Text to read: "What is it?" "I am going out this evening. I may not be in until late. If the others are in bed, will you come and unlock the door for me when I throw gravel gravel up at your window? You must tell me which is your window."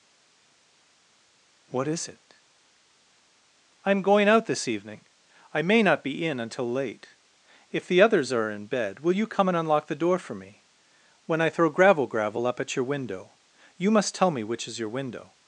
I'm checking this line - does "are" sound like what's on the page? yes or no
yes